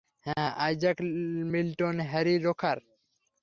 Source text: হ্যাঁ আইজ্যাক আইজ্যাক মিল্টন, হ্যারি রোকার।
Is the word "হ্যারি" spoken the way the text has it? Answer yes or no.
yes